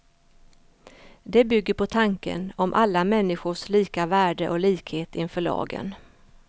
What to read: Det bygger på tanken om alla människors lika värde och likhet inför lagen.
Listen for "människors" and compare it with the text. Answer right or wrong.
right